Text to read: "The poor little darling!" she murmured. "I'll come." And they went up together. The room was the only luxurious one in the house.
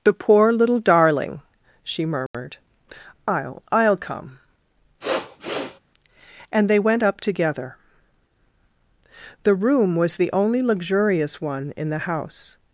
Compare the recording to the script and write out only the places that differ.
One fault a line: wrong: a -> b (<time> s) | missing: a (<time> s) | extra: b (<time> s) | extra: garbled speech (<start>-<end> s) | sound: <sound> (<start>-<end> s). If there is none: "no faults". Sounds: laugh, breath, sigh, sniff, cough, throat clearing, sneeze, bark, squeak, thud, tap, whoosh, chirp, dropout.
sound: dropout (2.3-2.3 s)
extra: I'll (3.7 s)
sound: sniff (5.0-5.8 s)